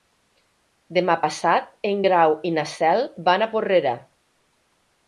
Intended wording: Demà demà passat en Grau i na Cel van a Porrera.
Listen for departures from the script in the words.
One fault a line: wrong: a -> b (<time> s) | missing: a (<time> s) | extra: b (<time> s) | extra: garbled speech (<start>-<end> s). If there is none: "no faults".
missing: demà (1.2 s)